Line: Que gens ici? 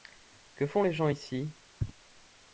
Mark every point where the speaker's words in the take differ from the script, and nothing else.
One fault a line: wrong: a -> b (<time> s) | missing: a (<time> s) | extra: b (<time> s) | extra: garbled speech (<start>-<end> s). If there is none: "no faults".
extra: font les (0.7 s)